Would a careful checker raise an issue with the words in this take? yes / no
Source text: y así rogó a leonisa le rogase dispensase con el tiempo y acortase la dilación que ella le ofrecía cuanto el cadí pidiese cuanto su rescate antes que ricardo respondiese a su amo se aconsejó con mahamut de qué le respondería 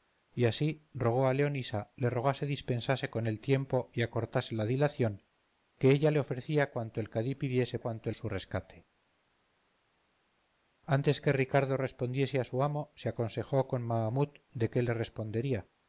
no